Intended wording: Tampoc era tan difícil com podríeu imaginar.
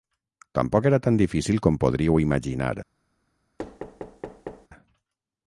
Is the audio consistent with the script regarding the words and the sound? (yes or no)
no